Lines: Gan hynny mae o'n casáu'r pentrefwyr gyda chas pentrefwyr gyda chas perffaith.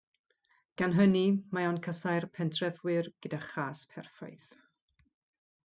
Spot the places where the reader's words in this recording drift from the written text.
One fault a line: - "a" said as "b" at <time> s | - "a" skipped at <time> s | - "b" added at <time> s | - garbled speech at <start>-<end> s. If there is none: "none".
- "pentrefwyr gyda chas" skipped at 3.9 s